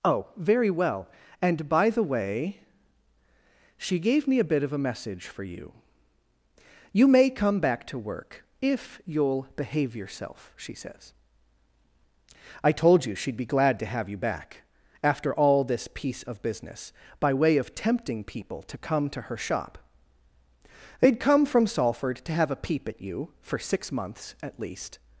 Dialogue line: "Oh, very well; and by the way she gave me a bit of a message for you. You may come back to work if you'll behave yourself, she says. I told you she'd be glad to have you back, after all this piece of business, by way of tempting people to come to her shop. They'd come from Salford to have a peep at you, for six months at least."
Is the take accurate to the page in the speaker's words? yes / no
yes